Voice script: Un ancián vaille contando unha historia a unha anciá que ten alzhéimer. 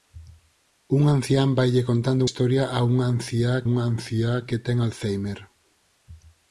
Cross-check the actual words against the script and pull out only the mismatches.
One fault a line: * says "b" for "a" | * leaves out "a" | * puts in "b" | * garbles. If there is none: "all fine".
* leaves out "unha"
* puts in "unha anciá"